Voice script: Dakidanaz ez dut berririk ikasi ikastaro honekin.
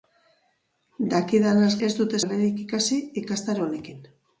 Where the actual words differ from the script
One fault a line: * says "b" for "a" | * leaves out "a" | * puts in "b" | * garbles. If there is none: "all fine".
all fine